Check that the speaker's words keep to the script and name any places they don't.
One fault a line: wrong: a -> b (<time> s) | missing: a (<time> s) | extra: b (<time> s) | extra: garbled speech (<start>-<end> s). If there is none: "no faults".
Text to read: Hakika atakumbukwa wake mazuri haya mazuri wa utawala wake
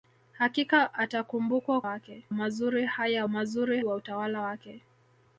no faults